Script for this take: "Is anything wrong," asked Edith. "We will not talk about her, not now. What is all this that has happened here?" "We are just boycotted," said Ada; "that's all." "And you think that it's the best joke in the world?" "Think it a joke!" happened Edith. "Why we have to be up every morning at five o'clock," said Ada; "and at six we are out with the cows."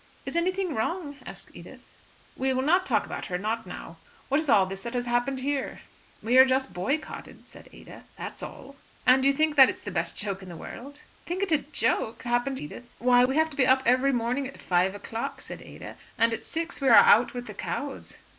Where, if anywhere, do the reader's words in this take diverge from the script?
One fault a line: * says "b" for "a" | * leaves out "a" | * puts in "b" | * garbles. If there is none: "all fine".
all fine